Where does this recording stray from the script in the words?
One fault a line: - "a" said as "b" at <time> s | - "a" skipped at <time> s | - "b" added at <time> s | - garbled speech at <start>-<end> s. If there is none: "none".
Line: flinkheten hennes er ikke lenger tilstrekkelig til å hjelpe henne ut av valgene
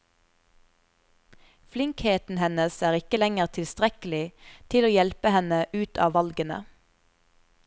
none